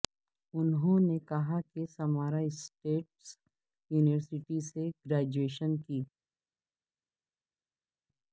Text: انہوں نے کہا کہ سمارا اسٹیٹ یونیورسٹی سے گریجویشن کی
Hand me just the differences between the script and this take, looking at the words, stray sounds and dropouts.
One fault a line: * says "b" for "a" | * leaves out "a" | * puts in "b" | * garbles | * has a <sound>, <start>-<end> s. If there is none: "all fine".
all fine